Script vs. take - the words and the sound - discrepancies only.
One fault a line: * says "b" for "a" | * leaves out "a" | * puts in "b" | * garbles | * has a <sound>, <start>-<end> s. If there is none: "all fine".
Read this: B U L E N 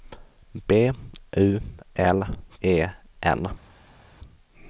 all fine